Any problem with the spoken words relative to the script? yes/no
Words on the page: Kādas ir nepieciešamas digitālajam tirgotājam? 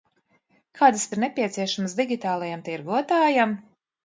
no